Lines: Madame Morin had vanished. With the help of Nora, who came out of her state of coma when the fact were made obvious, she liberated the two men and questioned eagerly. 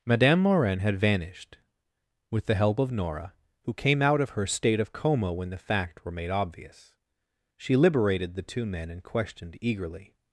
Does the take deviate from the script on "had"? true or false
false